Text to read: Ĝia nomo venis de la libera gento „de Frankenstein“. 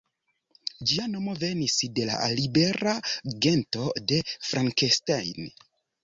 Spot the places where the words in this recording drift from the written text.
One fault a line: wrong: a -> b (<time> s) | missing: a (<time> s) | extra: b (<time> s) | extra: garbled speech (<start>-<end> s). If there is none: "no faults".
no faults